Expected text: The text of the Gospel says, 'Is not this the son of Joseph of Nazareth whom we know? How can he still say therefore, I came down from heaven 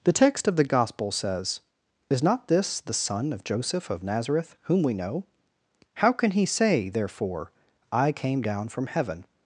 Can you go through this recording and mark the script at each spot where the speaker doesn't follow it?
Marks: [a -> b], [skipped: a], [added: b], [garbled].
The text of the Gospel says, 'Is not this the son of Joseph of Nazareth whom we know? How can he [skipped: still] say therefore, I came down from heaven